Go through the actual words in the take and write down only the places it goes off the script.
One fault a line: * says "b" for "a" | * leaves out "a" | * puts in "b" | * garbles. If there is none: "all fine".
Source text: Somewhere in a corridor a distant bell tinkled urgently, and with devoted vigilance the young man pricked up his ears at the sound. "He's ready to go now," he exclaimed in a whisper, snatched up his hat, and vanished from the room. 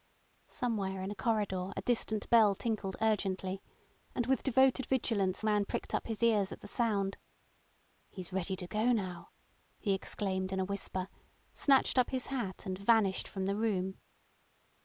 * leaves out "the young"